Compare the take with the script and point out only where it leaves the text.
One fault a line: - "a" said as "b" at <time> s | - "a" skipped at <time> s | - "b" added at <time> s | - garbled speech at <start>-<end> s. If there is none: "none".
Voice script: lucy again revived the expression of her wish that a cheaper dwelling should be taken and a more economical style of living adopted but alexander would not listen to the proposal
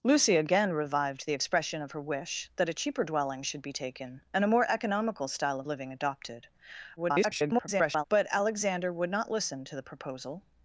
- garbled speech at 7.0-8.0 s